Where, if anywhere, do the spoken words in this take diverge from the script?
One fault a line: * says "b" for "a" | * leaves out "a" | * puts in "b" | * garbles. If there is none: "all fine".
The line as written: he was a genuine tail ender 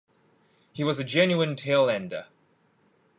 all fine